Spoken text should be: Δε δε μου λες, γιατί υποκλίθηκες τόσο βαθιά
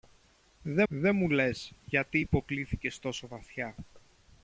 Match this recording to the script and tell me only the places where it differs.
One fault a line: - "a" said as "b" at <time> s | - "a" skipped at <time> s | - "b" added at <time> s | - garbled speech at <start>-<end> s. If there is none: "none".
none